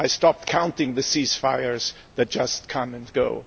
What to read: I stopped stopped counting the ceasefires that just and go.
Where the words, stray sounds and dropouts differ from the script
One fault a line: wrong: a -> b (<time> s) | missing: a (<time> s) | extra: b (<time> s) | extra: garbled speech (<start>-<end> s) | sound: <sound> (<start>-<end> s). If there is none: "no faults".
missing: stopped (0.5 s)
extra: come (2.7 s)